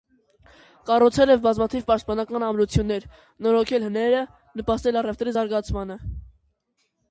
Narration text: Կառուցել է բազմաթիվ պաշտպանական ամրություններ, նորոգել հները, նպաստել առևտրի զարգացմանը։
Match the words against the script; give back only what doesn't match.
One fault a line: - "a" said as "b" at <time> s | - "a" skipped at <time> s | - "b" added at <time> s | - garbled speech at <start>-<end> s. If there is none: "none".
none